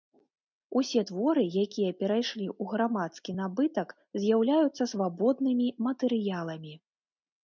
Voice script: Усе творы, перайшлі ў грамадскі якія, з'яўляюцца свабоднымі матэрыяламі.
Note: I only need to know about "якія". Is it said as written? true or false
false